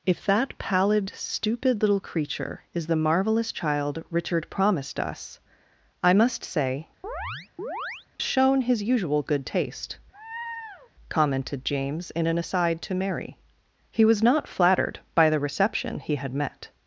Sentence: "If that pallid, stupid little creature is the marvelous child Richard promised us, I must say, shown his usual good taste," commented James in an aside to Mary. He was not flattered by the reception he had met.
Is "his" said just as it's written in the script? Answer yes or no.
yes